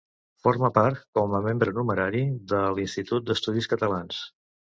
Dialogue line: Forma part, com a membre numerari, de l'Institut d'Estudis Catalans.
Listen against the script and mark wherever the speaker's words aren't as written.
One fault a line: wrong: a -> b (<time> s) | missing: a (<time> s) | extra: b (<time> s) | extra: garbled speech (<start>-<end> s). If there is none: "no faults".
no faults